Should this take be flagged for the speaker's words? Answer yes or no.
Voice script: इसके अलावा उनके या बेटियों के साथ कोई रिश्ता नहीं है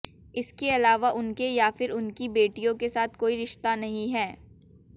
yes